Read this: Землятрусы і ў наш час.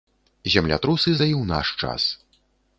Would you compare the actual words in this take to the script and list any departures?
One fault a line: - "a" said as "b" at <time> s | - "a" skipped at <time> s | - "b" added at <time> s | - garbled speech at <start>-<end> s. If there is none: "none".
none